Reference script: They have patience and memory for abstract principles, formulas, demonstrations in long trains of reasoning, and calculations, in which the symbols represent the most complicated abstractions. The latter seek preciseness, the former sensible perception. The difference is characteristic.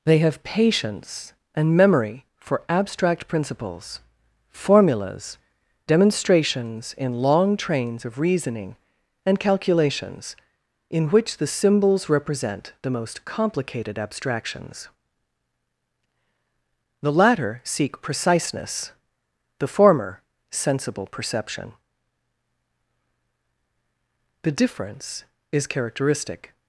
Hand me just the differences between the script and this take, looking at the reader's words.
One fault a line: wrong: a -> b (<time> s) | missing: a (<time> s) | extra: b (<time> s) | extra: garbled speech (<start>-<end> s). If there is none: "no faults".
no faults